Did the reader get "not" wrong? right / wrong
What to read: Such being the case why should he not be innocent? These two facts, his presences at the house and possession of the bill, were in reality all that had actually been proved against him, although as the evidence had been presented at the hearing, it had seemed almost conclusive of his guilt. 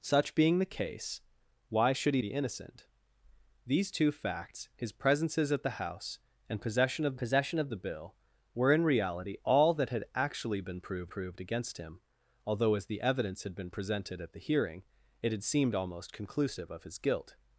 wrong